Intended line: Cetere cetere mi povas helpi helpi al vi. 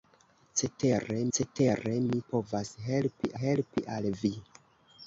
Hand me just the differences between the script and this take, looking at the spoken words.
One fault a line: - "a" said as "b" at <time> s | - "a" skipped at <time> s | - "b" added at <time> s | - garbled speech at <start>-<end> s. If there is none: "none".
none